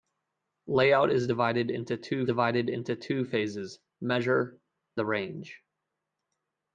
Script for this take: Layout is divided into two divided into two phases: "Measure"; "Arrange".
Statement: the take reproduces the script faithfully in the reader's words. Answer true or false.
true